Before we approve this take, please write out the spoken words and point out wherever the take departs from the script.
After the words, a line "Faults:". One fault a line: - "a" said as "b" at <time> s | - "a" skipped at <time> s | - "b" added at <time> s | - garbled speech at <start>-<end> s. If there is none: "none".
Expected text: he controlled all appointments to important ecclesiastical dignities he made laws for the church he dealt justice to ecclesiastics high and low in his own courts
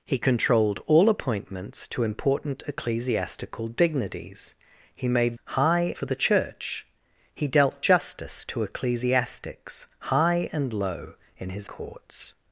he controlled all appointments to important ecclesiastical dignities he made high for the church he dealt justice to ecclesiastics high and low in his courts
Faults:
- "laws" said as "high" at 5.4 s
- "own" skipped at 11.7 s